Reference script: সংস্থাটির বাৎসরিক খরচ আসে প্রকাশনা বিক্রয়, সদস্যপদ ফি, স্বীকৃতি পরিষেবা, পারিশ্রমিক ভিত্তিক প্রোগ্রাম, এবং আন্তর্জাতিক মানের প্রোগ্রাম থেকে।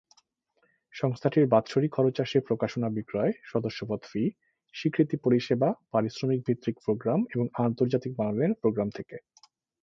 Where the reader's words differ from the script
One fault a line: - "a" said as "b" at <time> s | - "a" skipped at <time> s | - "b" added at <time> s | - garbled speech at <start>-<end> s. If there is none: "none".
none